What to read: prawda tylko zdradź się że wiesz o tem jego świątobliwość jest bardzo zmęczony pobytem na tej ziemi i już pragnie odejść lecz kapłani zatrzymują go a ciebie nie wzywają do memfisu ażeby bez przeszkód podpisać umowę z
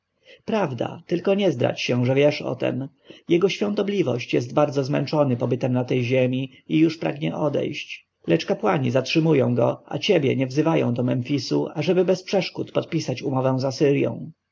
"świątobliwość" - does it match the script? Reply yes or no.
yes